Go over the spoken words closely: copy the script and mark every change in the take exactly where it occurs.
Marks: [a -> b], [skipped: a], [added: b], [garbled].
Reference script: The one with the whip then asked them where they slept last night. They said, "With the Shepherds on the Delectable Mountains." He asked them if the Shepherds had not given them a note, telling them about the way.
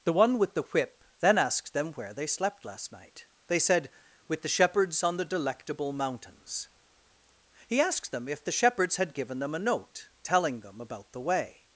The one with the whip then asked them where they slept last night. They said, "With the Shepherds on the Delectable Mountains." He asked them if the Shepherds had [skipped: not] given them a note, telling them about the way.